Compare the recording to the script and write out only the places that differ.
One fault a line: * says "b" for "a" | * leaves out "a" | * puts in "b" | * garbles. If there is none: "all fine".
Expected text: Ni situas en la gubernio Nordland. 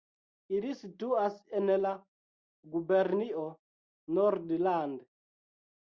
* says "Ili" for "Ni"